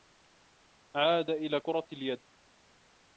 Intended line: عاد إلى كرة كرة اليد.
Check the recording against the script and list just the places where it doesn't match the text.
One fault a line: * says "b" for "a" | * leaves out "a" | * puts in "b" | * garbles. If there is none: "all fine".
* leaves out "كرة"